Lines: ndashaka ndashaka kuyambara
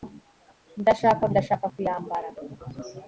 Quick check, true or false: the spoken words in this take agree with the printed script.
true